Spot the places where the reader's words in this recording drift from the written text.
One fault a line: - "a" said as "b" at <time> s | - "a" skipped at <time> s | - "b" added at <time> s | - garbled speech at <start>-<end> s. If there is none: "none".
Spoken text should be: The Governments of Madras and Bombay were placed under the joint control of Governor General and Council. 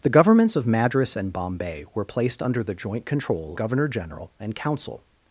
- "of" skipped at 3.6 s